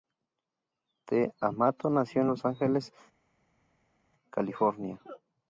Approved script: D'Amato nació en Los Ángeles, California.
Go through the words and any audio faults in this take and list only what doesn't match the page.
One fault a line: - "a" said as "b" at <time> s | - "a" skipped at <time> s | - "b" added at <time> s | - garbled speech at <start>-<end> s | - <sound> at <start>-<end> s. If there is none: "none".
none